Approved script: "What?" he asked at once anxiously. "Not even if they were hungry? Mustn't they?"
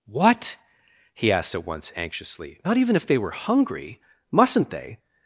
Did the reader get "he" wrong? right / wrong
right